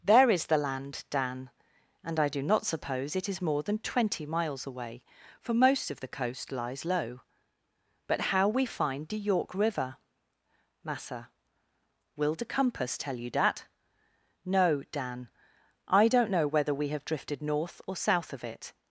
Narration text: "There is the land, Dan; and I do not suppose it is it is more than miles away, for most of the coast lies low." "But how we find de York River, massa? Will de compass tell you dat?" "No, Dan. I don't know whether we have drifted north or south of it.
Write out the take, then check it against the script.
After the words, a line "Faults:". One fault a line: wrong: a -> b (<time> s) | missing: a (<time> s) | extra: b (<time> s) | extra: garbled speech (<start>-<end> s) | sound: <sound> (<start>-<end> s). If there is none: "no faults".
"There is the land, Dan; and I do not suppose it is more than twenty miles away, for most of the coast lies low." "But how we find de York River, massa? Will de compass tell you dat?" "No, Dan. I don't know whether we have drifted north or south of it.
Faults:
missing: it is (3.4 s)
extra: twenty (3.8 s)